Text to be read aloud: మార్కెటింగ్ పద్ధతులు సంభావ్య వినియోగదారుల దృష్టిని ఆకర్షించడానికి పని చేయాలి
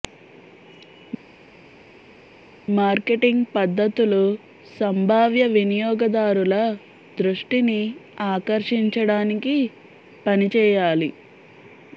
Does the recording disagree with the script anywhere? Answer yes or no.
no